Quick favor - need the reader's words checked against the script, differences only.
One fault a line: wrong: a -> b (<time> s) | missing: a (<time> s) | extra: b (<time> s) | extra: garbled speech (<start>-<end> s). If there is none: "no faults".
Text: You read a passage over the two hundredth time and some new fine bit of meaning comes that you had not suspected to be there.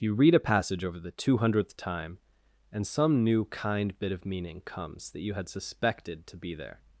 wrong: fine -> kind (3.5 s)
missing: not (5.5 s)